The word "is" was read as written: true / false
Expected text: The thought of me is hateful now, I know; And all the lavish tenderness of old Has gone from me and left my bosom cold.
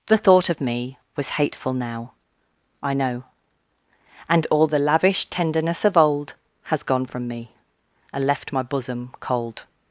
false